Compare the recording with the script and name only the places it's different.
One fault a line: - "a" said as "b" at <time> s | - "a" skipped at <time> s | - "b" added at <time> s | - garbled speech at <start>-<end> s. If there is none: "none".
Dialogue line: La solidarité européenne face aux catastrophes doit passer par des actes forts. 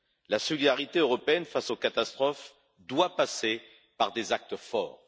none